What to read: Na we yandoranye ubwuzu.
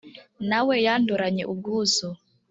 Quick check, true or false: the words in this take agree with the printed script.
true